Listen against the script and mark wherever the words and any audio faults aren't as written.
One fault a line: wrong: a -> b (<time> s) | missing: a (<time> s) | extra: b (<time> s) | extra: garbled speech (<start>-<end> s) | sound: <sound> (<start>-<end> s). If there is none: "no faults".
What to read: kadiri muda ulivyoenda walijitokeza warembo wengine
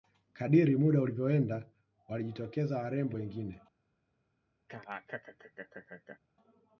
sound: laugh (4.7-6.2 s)